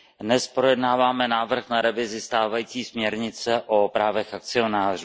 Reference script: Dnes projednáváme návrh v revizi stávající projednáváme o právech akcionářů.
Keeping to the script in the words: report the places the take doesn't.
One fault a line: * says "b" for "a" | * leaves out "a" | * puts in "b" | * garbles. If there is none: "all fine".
* says "na" for "v"
* says "směrnice" for "projednáváme"